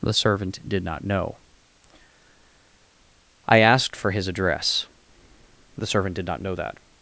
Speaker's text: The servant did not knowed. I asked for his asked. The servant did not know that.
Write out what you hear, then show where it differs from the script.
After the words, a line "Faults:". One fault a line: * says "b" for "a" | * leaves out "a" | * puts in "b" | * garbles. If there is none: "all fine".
The servant did not know. I asked for his address. The servant did not know that.
Faults:
* says "know" for "knowed"
* says "address" for "asked"